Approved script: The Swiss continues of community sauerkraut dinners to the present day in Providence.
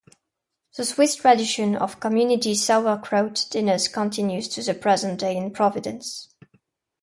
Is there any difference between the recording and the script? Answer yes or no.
yes